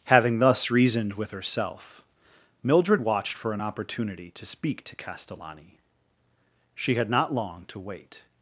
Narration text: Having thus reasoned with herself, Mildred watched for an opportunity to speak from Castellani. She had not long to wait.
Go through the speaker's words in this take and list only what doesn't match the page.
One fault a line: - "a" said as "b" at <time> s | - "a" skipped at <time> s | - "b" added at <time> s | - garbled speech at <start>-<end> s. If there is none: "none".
- "from" said as "to" at 4.8 s